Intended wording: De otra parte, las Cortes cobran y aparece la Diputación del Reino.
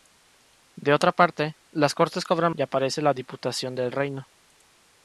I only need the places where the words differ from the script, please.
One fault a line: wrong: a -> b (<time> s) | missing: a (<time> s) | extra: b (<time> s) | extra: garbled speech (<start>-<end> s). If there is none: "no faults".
no faults